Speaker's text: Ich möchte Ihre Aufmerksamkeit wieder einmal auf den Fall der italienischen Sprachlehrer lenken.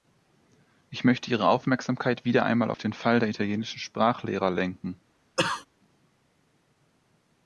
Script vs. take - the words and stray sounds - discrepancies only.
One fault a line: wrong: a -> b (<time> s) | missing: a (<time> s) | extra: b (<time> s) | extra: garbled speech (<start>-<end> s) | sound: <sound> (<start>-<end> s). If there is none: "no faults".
sound: cough (5.4-5.7 s)